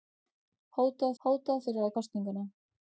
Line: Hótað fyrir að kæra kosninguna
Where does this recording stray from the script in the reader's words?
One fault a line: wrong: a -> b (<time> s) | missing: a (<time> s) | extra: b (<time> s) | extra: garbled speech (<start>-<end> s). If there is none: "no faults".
extra: hótað (1.2 s)
missing: kæra (1.9 s)